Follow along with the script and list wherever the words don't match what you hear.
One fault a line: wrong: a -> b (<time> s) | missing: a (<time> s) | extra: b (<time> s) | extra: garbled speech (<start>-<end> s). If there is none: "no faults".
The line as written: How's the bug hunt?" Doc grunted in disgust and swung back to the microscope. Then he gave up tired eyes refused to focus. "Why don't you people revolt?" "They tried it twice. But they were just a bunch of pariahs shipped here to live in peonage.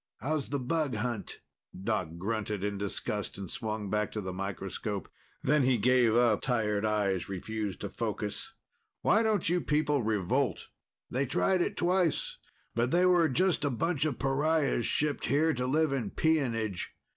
no faults